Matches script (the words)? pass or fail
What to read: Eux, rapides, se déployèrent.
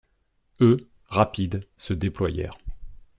pass